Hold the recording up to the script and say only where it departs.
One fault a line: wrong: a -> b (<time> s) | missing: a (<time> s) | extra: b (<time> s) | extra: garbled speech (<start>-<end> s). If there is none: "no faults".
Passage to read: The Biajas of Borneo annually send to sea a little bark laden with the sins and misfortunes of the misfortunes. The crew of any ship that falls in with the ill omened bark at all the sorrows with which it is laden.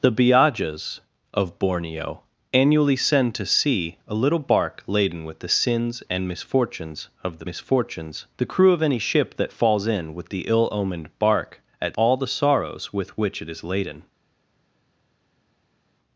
no faults